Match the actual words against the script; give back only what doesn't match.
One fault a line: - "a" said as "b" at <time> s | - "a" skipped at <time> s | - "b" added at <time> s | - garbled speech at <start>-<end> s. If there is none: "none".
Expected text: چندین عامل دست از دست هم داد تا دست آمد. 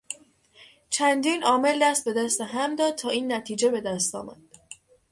- "از" said as "به" at 2.0 s
- "این نتیجه به" added at 3.1 s